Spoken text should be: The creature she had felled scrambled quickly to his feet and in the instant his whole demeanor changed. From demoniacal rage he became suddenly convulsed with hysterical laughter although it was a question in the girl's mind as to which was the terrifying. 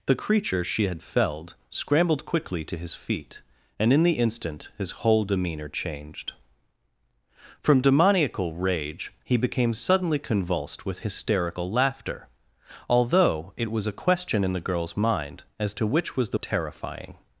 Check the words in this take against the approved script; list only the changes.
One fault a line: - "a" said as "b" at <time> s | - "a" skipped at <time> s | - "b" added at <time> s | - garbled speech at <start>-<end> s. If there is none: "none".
none